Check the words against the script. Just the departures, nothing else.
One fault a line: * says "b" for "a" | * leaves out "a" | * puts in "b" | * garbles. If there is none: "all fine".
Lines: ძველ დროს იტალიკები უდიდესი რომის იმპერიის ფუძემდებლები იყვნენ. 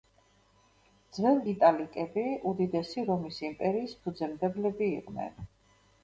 * leaves out "დროს"